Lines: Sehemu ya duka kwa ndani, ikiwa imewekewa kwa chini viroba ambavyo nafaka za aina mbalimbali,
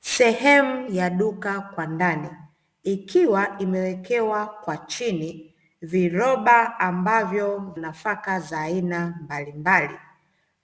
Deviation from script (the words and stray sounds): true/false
false